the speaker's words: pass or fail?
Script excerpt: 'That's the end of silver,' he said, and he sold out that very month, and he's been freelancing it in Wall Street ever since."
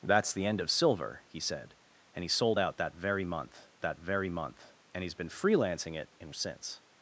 fail